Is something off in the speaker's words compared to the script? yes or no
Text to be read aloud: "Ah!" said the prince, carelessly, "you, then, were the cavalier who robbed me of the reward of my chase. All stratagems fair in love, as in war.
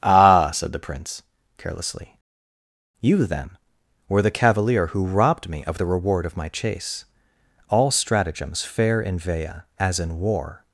yes